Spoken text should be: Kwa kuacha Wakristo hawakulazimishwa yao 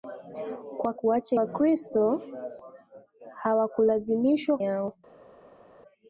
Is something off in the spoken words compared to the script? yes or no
no